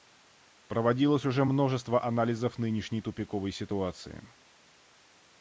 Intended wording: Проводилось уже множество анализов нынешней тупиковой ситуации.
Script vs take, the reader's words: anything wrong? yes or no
no